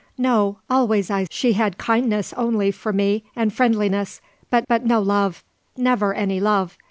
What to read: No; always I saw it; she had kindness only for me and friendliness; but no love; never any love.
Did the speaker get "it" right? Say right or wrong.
wrong